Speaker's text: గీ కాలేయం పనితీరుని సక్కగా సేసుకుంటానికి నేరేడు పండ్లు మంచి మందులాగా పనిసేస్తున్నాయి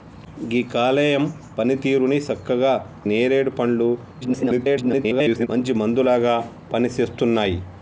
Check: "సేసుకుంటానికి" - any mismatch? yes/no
yes